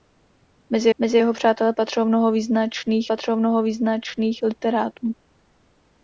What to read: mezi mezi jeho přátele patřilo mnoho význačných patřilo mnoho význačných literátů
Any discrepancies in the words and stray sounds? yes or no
no